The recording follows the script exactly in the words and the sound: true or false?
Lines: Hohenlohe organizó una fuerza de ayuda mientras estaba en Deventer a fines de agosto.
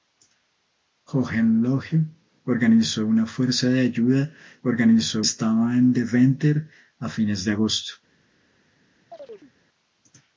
false